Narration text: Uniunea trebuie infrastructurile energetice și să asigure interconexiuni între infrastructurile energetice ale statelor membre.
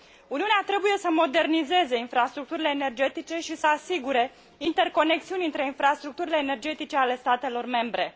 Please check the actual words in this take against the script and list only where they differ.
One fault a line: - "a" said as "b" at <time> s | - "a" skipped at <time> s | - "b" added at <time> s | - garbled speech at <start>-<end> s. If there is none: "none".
- "să modernizeze" added at 1.0 s